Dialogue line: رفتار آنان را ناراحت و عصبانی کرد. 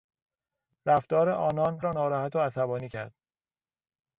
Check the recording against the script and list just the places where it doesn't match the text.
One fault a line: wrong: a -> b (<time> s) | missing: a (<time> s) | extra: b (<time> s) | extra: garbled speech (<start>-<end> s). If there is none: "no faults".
no faults